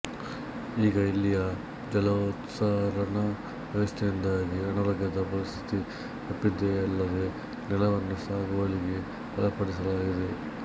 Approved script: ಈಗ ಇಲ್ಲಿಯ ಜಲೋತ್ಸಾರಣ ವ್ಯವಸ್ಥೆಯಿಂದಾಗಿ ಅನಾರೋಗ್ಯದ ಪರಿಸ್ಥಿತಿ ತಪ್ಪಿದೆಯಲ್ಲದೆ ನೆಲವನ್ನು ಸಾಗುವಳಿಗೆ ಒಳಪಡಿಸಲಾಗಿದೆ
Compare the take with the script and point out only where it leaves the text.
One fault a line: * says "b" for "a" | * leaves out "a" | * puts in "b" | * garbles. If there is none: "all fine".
all fine